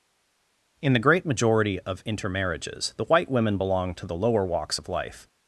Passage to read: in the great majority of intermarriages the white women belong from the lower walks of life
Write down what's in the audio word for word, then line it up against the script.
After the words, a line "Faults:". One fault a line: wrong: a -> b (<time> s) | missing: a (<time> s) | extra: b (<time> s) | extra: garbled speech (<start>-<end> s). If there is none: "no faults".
in the great majority of intermarriages the white women belong to the lower walks of life
Faults:
wrong: from -> to (3.9 s)